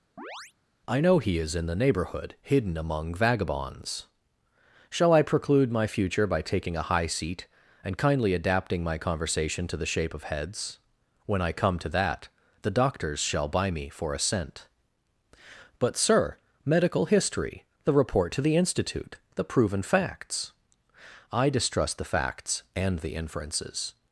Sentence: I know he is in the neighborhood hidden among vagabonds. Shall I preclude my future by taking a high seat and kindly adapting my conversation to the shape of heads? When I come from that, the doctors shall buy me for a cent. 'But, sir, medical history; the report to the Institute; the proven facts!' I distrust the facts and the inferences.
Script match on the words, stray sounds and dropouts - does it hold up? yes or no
no